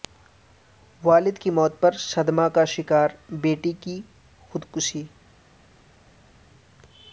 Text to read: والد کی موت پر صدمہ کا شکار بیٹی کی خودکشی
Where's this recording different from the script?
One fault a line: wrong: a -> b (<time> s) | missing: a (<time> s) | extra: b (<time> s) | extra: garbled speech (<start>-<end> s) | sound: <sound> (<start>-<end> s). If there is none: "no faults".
no faults